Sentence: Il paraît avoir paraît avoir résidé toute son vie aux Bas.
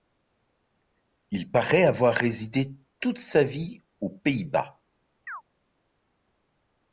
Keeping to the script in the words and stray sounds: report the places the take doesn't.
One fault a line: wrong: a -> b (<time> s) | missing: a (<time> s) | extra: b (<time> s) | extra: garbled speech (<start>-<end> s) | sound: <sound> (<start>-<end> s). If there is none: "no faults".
missing: paraît avoir (2.1 s)
wrong: son -> sa (3.2 s)
extra: Pays (4.1 s)
sound: chirp (5.3-5.4 s)